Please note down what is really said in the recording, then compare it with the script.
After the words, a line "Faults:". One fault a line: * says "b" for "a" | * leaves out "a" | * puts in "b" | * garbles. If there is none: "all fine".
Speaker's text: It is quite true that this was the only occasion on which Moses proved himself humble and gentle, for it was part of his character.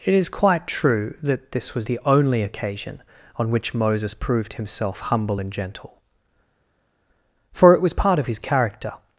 It is quite true that this was the only occasion on which Moses proved himself humble and gentle, for it was part of his character.
Faults:
all fine